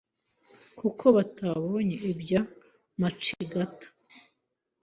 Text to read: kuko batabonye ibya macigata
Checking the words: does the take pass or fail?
pass